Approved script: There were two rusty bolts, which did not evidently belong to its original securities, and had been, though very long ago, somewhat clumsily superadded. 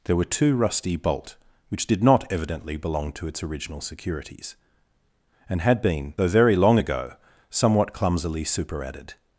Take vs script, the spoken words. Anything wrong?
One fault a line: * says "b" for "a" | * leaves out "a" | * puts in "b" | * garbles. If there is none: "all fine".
* says "bolt" for "bolts"